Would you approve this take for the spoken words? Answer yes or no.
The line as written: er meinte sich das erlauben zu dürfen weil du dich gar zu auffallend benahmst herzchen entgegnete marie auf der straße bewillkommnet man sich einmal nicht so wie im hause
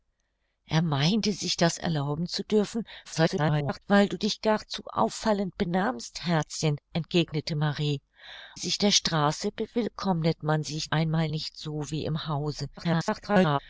no